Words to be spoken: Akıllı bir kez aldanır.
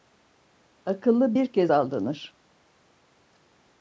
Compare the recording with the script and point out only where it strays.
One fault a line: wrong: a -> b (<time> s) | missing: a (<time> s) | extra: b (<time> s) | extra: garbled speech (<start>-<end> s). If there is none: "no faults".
no faults